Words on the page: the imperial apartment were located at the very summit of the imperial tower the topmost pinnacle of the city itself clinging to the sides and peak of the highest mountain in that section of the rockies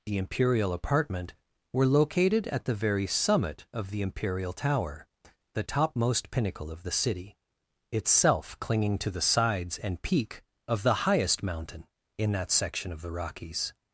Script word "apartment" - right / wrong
right